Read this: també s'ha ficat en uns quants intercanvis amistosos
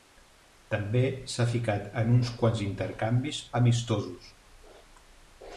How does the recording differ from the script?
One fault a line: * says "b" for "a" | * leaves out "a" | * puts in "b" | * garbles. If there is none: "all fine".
all fine